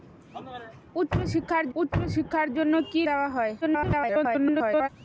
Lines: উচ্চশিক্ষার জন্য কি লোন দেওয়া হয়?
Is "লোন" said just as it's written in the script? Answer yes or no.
no